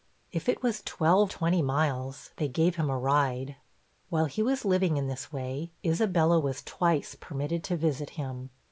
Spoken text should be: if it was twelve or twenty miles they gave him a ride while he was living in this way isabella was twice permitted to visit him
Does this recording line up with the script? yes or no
no